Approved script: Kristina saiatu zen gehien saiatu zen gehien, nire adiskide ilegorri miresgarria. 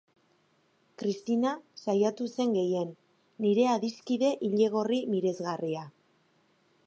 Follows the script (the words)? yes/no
no